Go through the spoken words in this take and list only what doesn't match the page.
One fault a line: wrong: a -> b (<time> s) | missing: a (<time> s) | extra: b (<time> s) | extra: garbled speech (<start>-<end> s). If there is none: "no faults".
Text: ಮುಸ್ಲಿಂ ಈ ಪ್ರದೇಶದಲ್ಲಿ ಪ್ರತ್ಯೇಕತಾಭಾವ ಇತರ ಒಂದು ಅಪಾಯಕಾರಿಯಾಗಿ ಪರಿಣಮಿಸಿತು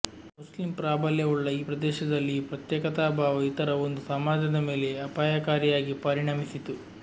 extra: ಪ್ರಾಬಲ್ಯವುಳ್ಳ (0.8 s)
extra: ಈ (2.3 s)
extra: ಸಮಾಜದ ಮೇಲೆ (4.1 s)